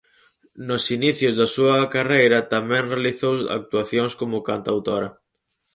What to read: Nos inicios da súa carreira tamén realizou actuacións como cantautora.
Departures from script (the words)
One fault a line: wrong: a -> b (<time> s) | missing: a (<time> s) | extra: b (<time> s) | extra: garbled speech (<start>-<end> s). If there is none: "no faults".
no faults